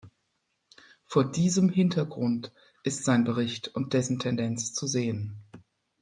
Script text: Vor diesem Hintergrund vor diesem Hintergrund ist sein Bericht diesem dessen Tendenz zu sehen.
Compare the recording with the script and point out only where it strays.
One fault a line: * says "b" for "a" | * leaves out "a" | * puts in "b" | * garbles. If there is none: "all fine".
* leaves out "vor diesem Hintergrund"
* says "und" for "diesem"